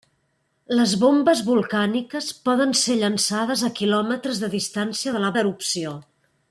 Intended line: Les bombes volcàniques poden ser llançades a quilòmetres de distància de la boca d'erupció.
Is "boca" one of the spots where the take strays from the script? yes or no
yes